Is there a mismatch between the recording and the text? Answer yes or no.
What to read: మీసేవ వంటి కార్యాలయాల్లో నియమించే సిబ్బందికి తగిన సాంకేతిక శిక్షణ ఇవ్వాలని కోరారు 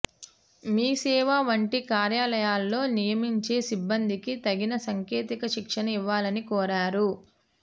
no